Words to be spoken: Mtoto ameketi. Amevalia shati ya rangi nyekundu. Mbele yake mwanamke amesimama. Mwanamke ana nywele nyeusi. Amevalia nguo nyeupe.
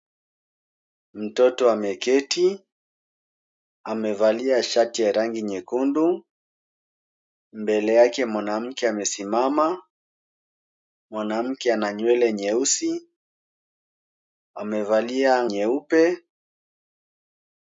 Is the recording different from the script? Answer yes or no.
yes